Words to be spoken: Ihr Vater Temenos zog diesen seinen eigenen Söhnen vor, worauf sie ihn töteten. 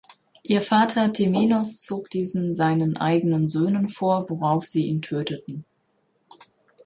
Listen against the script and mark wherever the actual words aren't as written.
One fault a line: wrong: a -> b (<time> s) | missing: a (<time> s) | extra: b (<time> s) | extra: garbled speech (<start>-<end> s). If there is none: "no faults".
no faults